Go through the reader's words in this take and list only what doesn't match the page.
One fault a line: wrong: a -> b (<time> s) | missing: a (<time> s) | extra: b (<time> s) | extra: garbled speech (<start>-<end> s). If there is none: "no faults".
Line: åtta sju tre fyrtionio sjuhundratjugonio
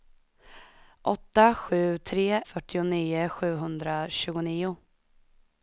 no faults